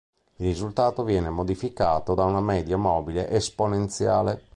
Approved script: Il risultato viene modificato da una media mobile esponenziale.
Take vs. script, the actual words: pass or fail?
pass